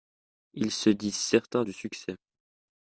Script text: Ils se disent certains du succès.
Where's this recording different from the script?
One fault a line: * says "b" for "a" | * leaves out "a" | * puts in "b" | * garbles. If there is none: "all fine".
all fine